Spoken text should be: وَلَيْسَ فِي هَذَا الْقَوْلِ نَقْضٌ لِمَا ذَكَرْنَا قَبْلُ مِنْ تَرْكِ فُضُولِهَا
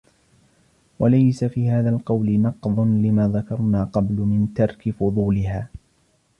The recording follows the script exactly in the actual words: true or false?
true